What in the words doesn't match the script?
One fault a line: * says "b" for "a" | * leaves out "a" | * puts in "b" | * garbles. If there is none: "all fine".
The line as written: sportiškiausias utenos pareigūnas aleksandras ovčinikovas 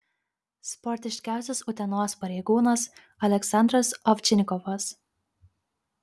all fine